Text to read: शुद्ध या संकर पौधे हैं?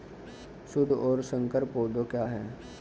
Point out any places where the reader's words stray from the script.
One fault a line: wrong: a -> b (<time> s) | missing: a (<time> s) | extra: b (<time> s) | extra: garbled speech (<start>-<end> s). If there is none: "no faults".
wrong: या -> और (0.9 s)
extra: क्या (2.0 s)